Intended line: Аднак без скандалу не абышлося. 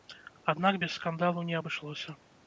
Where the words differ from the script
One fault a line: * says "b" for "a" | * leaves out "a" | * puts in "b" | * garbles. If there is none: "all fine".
all fine